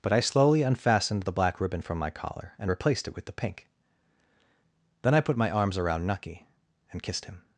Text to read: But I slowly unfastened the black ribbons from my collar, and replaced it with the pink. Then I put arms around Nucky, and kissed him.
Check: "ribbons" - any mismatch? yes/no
yes